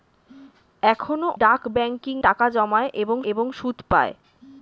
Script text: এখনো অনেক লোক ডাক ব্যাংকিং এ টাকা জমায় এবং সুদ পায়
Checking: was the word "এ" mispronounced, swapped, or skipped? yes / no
yes